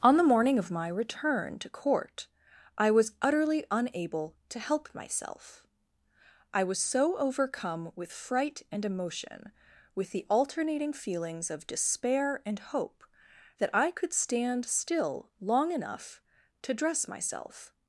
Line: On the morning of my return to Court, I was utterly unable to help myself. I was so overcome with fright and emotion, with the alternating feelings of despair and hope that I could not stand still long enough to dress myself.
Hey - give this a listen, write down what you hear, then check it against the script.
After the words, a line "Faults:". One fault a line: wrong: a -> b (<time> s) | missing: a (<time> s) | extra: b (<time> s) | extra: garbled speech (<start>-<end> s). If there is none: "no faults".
On the morning of my return to Court, I was utterly unable to help myself. I was so overcome with fright and emotion, with the alternating feelings of despair and hope that I could stand still long enough to dress myself.
Faults:
missing: not (14.1 s)